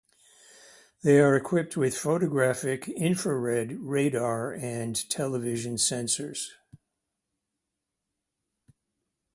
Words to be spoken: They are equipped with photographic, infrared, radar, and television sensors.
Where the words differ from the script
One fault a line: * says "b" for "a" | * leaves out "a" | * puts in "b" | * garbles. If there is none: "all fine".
all fine